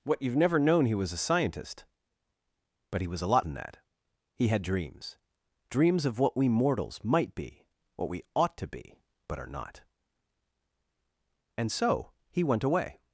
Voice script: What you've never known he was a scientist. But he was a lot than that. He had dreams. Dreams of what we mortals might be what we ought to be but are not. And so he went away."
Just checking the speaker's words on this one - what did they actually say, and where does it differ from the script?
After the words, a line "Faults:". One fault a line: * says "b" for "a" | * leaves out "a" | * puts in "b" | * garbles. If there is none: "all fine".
What you've never known he was a scientist. But he was a lot than that. He had dreams. Dreams of what we mortals might be what we ought to be but are not. And so he went away."
Faults:
all fine